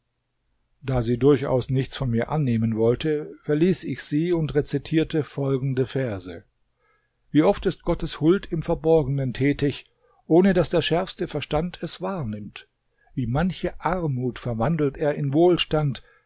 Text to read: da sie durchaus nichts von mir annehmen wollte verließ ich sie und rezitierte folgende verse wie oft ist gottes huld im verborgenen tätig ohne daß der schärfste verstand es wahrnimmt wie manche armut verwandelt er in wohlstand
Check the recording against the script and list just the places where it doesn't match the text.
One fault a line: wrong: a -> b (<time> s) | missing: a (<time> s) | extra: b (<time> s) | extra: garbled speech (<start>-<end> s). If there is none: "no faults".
no faults